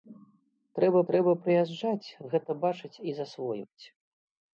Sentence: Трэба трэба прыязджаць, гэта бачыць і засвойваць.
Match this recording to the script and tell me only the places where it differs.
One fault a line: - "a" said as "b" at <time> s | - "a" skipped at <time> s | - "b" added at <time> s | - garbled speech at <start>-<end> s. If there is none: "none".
none